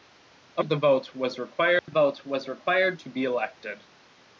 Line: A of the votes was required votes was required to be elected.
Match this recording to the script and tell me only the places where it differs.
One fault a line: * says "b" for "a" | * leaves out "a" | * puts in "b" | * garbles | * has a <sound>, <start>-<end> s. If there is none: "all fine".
* has a dropout, 1.8-1.9 s